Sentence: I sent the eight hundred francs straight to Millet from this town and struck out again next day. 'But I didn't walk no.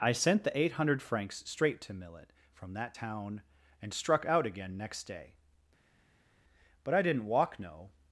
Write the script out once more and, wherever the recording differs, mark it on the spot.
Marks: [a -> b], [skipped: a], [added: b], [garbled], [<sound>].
I sent the eight hundred francs straight to Millet from [this -> that] town and struck out again next day. 'But I didn't walk no.